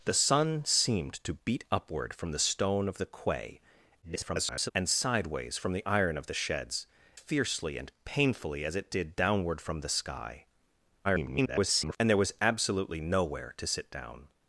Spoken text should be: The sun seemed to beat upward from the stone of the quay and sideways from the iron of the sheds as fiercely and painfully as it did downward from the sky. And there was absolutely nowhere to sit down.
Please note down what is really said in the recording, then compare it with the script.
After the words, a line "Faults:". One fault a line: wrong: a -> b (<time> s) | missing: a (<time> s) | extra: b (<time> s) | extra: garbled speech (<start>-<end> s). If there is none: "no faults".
The sun seemed to beat upward from the stone of the quay [garbled] and sideways from the iron of the sheds fiercely and painfully as it did downward from the sky. [garbled] And there was absolutely nowhere to sit down.
Faults:
extra: garbled speech (4.0-4.7 s)
missing: as (6.9 s)
extra: garbled speech (11.0-12.0 s)